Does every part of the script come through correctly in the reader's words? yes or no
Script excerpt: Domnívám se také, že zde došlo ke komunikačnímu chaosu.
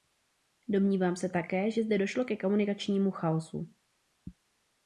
yes